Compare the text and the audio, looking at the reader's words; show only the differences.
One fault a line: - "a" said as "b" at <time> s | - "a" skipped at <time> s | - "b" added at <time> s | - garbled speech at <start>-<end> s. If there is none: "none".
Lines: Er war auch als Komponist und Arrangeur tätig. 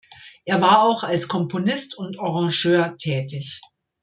none